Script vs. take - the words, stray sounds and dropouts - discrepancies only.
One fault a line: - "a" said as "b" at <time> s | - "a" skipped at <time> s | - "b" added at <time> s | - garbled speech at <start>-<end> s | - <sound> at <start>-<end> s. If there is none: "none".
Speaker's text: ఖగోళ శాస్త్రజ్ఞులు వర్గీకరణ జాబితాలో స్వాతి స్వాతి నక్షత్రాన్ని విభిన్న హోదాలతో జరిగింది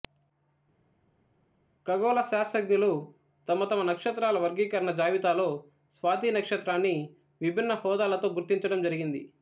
- "తమ తమ నక్షత్రాల" added at 3.5 s
- "స్వాతి" skipped at 6.3 s
- "గుర్తించడం" added at 8.3 s